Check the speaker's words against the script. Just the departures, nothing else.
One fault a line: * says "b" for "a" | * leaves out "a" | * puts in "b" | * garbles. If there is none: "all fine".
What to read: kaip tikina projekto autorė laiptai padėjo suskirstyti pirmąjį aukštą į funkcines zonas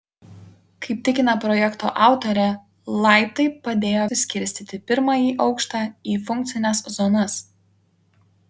all fine